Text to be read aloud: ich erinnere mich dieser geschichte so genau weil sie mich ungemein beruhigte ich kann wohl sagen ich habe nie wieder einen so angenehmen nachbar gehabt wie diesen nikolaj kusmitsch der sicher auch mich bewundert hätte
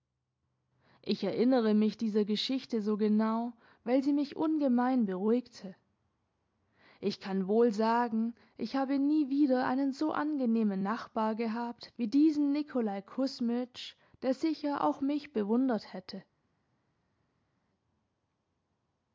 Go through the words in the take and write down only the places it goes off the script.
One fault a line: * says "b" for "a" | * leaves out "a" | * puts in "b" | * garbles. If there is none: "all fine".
all fine